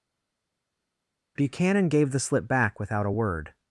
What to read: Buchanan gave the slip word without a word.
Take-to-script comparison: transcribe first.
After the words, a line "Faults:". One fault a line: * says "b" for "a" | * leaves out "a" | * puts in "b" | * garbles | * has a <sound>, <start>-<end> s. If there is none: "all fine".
Buchanan gave the slip back without a word.
Faults:
* says "back" for "word"